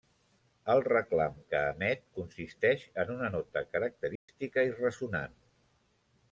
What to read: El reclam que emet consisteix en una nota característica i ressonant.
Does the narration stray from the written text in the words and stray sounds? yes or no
yes